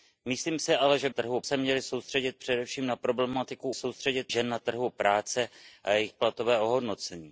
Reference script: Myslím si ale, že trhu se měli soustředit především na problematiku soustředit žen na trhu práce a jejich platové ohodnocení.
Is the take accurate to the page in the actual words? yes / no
yes